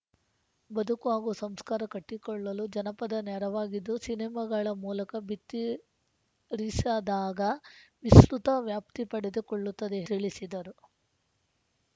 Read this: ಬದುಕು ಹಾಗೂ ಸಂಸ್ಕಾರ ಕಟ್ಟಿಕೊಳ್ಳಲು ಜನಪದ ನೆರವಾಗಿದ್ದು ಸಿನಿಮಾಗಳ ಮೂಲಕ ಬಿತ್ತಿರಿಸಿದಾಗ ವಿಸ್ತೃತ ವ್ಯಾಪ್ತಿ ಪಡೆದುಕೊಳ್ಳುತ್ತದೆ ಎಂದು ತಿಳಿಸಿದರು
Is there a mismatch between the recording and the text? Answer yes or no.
yes